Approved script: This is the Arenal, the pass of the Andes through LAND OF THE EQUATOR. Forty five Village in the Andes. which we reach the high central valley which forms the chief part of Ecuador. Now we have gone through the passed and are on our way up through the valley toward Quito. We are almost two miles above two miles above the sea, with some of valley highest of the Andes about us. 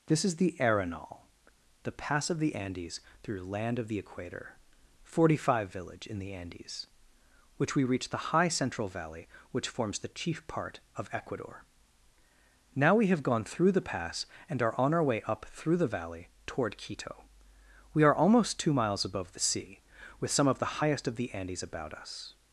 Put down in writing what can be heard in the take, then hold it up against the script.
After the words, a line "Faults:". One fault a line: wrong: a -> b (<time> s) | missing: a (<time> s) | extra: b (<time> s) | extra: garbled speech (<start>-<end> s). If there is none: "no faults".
This is the Arenal, the pass of the Andes through LAND OF THE EQUATOR. Forty five Village in the Andes. which we reach the high central valley which forms the chief part of Ecuador. Now we have gone through the pass and are on our way up through the valley toward Quito. We are almost two miles above the sea, with some of the highest of the Andes about us.
Faults:
wrong: passed -> pass (13.9 s)
missing: two miles above (19.3 s)
wrong: valley -> the (20.6 s)